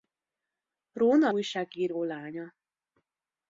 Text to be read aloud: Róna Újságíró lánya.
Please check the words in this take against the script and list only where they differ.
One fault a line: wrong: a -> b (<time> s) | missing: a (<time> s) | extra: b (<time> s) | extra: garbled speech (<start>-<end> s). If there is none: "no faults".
no faults